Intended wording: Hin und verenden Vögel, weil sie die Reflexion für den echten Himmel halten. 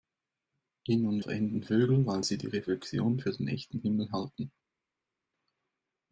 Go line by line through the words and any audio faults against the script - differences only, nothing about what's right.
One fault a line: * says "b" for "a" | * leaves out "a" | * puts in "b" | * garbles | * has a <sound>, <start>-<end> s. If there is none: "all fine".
all fine